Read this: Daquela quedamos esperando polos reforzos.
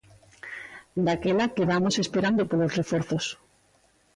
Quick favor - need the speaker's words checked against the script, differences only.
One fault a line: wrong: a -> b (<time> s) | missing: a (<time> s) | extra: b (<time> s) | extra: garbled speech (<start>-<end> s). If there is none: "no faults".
no faults